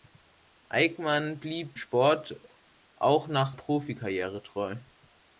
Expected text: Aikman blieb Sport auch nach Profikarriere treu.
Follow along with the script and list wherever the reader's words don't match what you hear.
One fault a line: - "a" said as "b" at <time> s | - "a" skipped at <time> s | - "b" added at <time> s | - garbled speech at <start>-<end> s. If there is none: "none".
none